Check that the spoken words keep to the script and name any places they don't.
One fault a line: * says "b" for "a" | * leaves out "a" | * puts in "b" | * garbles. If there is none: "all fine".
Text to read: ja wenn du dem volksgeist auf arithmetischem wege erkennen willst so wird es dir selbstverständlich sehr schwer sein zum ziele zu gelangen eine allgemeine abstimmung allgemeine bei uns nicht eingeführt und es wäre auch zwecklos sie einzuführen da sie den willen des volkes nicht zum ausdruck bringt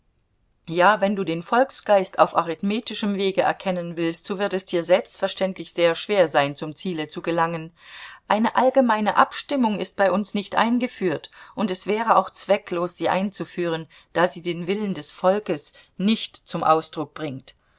* says "den" for "dem"
* says "ist" for "allgemeine"